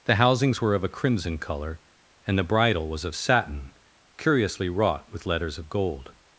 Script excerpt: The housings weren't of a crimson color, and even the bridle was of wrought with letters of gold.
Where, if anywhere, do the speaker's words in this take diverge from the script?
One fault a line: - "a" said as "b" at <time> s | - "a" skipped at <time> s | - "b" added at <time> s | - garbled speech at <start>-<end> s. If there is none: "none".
- "weren't" said as "were" at 0.6 s
- "even" skipped at 2.4 s
- "satin curiously" added at 3.1 s